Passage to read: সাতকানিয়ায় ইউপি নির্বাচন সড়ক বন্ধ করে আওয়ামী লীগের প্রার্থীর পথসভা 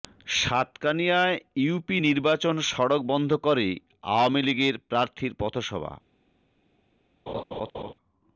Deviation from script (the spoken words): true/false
false